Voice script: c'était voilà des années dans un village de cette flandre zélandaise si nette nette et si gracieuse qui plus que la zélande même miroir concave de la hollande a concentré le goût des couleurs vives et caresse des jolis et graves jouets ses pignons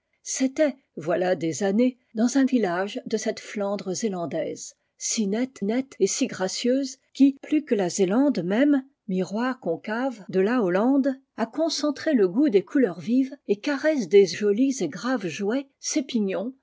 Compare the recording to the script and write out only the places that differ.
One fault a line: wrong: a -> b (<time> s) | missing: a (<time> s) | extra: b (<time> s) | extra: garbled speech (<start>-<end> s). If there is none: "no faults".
no faults